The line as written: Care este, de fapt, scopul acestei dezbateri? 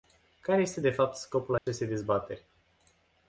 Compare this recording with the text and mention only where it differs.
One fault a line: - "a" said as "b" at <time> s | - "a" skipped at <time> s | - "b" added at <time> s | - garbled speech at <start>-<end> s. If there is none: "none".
none